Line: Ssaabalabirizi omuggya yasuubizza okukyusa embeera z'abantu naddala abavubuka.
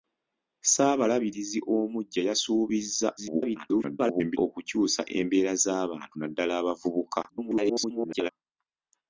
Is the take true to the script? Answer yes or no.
no